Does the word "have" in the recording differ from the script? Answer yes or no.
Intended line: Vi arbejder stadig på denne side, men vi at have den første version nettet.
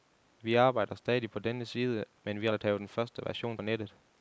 no